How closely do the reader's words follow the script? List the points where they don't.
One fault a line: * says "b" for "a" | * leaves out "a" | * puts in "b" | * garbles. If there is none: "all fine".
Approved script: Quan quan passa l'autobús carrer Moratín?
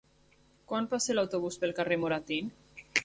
* leaves out "quan"
* puts in "pel"